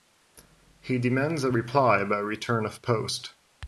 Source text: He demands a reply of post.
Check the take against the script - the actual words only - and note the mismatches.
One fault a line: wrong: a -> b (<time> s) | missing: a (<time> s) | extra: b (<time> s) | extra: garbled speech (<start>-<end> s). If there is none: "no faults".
extra: by return (2.0 s)